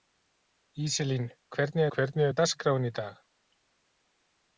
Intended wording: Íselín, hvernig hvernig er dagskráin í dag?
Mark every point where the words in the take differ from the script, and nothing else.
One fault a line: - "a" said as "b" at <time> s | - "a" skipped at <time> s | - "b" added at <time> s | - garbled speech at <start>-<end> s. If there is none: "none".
none